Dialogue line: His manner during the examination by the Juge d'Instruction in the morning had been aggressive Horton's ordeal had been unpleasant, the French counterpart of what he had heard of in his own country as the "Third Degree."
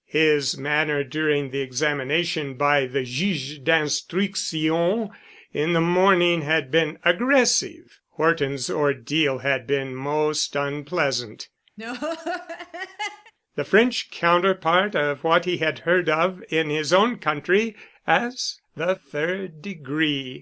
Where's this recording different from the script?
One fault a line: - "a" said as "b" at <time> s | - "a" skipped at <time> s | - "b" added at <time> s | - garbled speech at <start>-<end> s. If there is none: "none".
- "most" added at 9.9 s